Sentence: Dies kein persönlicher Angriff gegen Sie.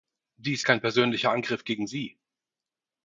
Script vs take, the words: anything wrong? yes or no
no